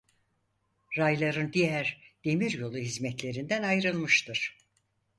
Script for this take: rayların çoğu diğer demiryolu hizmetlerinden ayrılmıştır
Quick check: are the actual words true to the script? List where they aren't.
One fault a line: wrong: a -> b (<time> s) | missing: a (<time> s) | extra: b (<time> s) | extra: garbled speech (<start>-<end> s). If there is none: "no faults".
missing: çoğu (1.5 s)